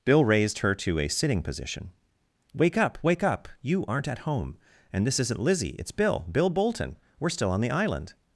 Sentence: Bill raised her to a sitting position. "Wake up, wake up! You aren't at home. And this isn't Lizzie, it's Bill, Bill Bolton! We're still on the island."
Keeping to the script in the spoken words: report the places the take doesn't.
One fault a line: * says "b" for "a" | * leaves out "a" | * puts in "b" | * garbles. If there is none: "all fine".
all fine